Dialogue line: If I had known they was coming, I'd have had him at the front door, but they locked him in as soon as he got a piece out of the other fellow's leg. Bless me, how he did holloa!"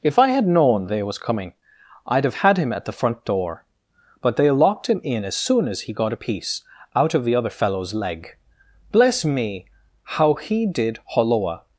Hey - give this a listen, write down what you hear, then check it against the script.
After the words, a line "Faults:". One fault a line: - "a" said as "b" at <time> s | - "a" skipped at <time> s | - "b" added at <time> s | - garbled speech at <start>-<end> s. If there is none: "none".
If I had known they was coming, I'd have had him at the front door, but they locked him in as soon as he got a piece out of the other fellow's leg. Bless me, how he did holloa!"
Faults:
none